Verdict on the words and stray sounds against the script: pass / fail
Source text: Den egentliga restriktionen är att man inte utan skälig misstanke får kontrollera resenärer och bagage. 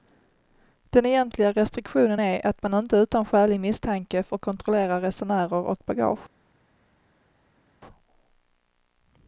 pass